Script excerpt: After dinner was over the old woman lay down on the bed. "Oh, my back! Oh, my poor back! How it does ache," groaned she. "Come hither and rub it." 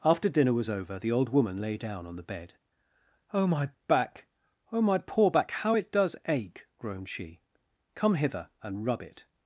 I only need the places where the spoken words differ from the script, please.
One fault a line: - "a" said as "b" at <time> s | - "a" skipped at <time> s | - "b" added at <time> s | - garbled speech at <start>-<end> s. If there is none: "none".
none